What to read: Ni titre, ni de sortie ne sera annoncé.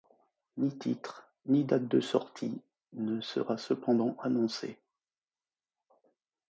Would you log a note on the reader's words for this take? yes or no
yes